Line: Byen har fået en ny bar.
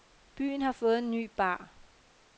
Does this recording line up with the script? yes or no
yes